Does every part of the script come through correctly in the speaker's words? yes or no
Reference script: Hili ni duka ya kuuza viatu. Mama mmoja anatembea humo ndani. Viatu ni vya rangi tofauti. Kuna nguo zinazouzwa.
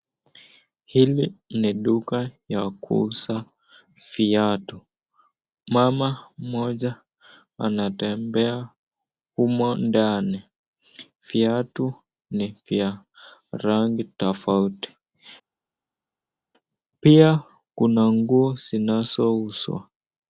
no